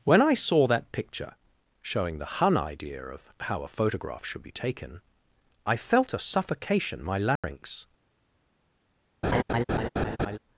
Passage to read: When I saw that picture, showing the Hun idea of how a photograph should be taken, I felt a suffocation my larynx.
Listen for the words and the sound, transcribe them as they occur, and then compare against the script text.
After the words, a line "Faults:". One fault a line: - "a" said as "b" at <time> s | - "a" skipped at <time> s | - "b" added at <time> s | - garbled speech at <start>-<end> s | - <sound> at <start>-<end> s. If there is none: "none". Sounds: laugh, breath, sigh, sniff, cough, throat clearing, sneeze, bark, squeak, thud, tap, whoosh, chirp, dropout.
When I saw that picture, showing the Hun idea of how a photograph should be taken, I felt a suffocation my larynx.
Faults:
- dropout at 7.4-7.4 s
- laugh at 9.2-10.4 s